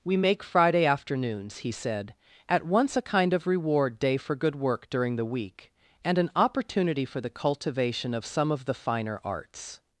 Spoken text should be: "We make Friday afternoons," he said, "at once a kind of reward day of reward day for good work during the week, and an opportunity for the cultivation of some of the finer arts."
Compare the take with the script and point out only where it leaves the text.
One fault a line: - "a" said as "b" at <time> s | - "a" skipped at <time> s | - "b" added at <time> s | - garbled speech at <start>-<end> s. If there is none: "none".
- "of reward day" skipped at 4.2 s